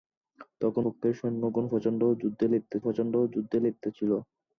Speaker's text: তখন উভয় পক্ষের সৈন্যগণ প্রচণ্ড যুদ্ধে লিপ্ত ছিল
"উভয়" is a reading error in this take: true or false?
true